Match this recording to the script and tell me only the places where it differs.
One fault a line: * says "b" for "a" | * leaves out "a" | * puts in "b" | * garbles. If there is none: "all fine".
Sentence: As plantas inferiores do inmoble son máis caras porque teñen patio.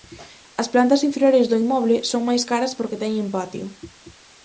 all fine